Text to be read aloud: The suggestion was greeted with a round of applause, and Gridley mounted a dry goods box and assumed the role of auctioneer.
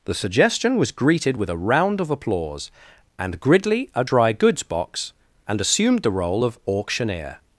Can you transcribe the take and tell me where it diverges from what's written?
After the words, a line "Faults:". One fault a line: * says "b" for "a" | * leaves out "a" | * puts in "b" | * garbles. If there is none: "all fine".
The suggestion was greeted with a round of applause, and Gridley a dry goods box and assumed the role of auctioneer.
Faults:
* leaves out "mounted"